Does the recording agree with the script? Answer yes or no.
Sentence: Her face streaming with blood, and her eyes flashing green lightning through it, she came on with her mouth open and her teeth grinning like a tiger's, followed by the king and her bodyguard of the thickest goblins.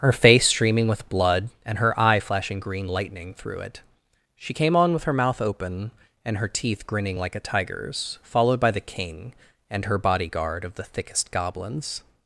no